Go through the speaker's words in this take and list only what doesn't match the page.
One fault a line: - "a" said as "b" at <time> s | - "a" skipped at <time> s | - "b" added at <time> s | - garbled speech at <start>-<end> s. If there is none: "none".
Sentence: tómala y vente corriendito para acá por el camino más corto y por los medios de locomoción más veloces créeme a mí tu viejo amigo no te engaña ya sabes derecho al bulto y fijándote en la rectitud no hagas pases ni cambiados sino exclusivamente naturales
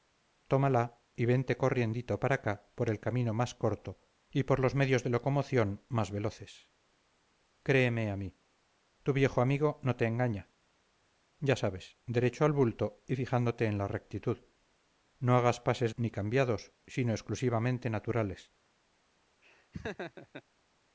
none